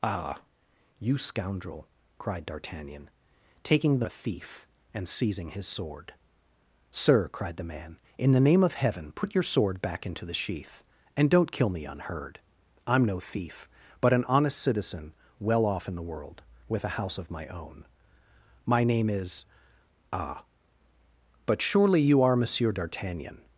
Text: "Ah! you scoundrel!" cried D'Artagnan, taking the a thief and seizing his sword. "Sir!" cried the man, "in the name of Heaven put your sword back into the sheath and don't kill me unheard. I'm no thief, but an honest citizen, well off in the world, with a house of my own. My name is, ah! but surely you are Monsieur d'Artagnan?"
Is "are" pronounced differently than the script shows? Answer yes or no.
no